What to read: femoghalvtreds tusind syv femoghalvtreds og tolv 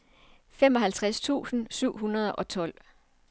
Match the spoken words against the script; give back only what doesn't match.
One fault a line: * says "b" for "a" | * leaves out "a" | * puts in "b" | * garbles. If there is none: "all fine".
* says "hundrede" for "femoghalvtreds"